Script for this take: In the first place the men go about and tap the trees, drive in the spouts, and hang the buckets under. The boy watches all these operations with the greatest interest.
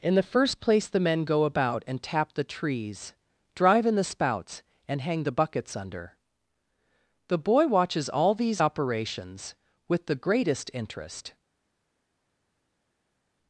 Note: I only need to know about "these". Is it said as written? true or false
true